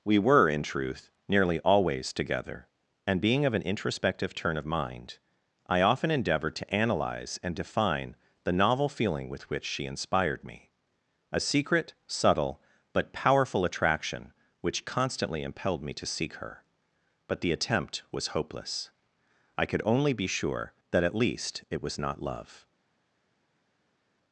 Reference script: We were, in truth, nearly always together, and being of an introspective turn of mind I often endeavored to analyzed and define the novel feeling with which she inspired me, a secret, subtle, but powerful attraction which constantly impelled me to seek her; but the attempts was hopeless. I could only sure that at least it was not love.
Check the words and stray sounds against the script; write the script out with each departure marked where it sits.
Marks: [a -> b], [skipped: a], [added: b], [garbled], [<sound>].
We were, in truth, nearly always together, and being of an introspective turn of mind I often endeavored to [analyzed -> analyze] and define the novel feeling with which she inspired me, a secret, subtle, but powerful attraction which constantly impelled me to seek her; but the [attempts -> attempt] was hopeless. I could only [added: be] sure that at least it was not love.